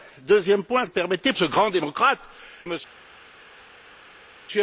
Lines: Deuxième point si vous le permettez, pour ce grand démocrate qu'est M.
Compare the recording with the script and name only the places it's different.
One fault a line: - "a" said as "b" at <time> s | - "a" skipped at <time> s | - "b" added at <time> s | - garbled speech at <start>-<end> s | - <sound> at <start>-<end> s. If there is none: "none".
- "si vous" skipped at 0.8 s
- "pour" skipped at 1.3 s
- "qu'est" skipped at 2.2 s